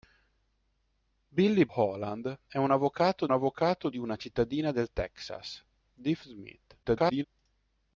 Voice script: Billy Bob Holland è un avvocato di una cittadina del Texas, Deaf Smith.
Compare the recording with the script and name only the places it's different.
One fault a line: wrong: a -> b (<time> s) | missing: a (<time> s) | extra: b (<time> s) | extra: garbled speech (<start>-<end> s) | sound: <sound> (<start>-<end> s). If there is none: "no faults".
missing: Bob (1.7 s)
extra: avvocato (3.3 s)
extra: garbled speech (6.8-7.2 s)